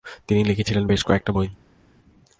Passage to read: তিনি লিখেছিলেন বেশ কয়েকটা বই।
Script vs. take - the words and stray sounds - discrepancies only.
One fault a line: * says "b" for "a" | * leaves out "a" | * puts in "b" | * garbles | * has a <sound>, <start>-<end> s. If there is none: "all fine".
all fine